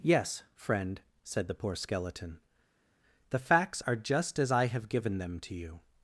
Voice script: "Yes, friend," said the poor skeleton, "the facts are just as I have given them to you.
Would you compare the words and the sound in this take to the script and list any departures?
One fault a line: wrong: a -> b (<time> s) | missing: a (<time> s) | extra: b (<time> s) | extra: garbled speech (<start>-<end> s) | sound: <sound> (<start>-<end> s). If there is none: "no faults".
no faults